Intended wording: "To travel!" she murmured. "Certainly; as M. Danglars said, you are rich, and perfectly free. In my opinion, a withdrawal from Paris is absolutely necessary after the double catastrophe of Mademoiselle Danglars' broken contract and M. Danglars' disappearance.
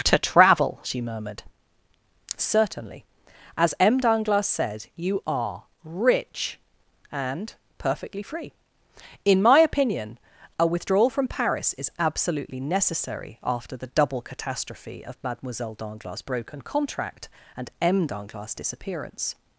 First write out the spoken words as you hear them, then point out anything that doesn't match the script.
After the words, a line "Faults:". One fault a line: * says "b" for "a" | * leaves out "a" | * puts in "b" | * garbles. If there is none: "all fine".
"To travel!" she murmured. "Certainly; as M. Danglars said, you are rich, and perfectly free. In my opinion, a withdrawal from Paris is absolutely necessary after the double catastrophe of Mademoiselle Danglars' broken contract and M. Danglars' disappearance.
Faults:
all fine